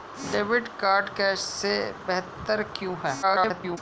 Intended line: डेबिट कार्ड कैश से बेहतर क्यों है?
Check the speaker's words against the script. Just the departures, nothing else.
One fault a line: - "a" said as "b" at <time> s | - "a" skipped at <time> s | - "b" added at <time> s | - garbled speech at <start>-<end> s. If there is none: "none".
- garbled speech at 3.2-3.8 s